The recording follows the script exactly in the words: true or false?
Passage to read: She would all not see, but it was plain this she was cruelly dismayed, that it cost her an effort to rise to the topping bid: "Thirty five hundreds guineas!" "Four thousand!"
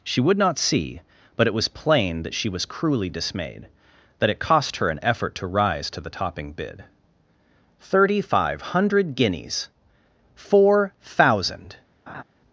false